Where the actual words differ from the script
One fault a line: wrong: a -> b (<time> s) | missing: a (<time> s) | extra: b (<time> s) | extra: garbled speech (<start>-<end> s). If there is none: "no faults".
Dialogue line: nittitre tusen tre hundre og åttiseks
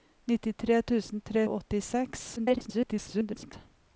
missing: hundre (1.4 s)
extra: garbled speech (2.4-3.5 s)